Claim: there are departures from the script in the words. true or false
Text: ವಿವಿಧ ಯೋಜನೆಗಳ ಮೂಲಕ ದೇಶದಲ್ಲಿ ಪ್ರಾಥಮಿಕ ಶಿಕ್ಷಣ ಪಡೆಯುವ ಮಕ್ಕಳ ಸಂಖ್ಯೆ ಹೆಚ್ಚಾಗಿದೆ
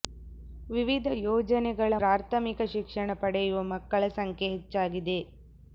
true